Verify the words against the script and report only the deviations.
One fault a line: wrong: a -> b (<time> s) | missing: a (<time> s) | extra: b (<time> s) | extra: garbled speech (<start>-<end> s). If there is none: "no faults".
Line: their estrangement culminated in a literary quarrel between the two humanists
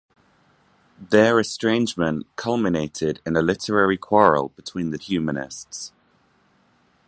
missing: two (5.0 s)